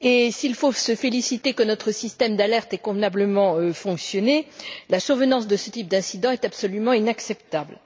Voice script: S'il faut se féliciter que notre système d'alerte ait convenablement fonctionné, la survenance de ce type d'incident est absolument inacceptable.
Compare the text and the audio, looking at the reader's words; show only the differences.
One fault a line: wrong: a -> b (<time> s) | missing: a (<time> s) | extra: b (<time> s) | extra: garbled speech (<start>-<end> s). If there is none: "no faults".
no faults